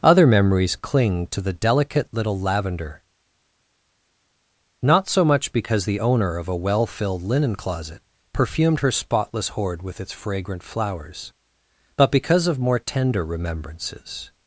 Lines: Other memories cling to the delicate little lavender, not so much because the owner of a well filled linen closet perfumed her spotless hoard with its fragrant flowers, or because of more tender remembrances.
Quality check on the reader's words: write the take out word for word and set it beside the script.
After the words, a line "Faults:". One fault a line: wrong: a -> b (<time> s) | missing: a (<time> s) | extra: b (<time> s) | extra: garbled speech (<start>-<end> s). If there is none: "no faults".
Other memories cling to the delicate little lavender, not so much because the owner of a well filled linen closet perfumed her spotless hoard with its fragrant flowers, but because of more tender remembrances.
Faults:
wrong: or -> but (12.0 s)